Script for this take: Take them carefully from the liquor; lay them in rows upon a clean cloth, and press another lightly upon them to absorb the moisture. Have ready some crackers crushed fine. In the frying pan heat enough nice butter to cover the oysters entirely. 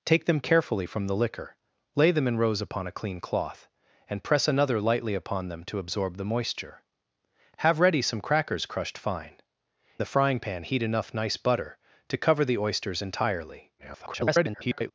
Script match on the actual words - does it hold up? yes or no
no